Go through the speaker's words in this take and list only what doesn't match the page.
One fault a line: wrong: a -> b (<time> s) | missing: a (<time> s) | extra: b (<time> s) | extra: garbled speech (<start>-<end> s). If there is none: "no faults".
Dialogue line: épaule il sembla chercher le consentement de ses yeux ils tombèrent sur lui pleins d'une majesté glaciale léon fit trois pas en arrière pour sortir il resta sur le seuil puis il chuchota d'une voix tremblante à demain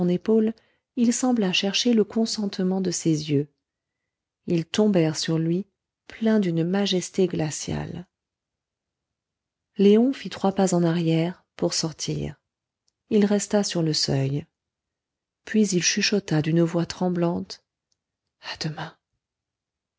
no faults